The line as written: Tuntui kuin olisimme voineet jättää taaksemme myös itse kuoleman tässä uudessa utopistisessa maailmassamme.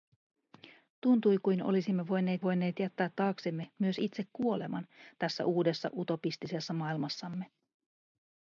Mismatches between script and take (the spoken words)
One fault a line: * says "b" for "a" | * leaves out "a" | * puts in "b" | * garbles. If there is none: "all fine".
* puts in "voineet"